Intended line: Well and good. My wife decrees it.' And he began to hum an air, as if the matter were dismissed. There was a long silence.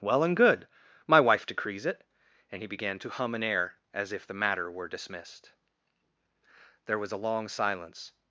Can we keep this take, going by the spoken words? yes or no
yes